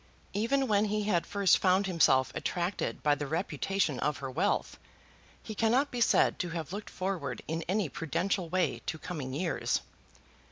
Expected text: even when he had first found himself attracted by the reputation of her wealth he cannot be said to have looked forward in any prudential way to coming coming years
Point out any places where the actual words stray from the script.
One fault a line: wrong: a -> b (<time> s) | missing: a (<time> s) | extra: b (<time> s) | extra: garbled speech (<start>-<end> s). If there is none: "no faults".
missing: coming (9.3 s)